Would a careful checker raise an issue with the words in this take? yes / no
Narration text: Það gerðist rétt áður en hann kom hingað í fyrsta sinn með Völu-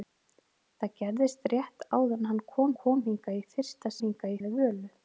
yes